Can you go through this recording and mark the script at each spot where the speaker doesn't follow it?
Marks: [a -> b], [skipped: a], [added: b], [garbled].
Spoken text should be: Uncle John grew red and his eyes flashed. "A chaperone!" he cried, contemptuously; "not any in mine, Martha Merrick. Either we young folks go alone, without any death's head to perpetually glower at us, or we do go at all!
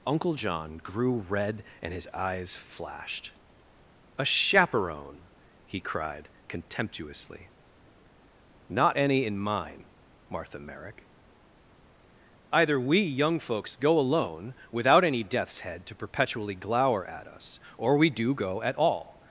Uncle John grew red and his eyes flashed. "A chaperone!" he cried, contemptuously; "not any in mine, Martha Merrick. Either we young folks go alone, without any death's head to perpetually glower at us, or we do go at all!